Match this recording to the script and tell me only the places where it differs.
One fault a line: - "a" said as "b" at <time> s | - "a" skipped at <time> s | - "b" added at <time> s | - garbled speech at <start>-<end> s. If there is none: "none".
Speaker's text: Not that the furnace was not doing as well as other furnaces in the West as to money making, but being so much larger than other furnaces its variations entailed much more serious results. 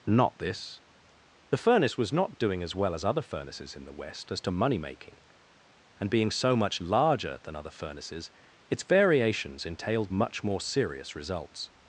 - "that" said as "this" at 0.4 s
- "but" said as "and" at 6.0 s